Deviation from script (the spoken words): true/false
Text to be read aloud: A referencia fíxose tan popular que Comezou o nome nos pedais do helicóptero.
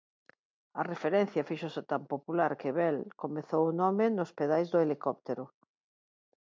true